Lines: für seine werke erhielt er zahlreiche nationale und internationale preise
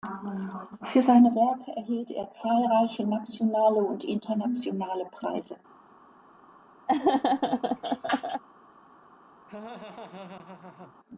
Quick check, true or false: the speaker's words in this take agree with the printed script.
true